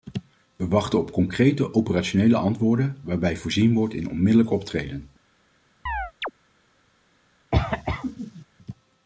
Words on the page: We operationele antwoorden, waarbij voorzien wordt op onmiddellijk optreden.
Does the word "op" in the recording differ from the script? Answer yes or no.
yes